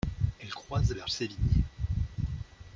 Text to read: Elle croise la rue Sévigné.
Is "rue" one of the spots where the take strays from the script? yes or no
yes